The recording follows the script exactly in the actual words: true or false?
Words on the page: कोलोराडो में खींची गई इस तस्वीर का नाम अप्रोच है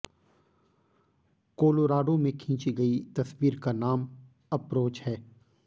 false